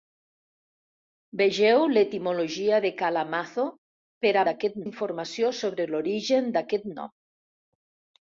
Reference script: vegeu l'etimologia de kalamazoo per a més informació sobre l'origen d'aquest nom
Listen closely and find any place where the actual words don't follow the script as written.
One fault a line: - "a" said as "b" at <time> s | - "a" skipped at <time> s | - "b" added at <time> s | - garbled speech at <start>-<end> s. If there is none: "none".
- "més" said as "d'aquest" at 4.5 s